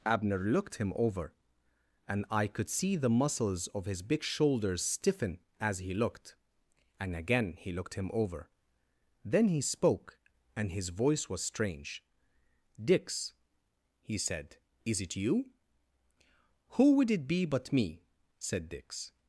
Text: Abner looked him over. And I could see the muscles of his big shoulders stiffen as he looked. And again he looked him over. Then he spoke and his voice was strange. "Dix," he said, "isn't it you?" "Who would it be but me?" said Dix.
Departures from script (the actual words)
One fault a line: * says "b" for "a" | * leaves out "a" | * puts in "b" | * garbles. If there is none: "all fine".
* says "is" for "isn't"